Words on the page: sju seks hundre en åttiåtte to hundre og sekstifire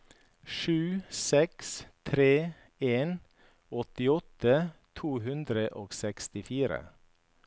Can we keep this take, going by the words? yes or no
no